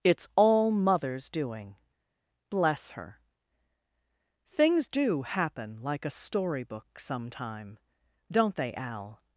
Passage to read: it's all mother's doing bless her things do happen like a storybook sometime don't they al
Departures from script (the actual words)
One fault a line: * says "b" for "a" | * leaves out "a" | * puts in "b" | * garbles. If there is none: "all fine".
all fine